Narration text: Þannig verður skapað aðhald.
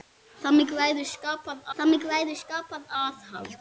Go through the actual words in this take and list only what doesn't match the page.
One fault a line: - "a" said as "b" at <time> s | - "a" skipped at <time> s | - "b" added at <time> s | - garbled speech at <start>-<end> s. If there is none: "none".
- "þannig verður skapað" added at 1.8 s